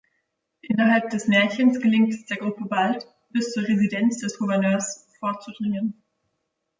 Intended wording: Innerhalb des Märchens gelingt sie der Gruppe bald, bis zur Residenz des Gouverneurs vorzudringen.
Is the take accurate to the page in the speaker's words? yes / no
no